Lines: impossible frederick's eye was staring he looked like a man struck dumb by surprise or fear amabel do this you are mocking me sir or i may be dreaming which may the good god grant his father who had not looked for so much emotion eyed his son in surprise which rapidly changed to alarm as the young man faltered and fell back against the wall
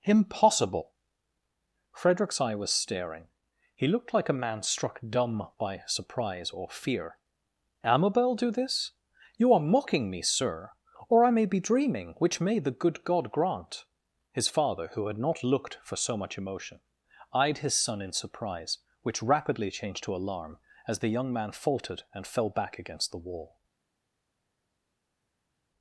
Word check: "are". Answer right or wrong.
right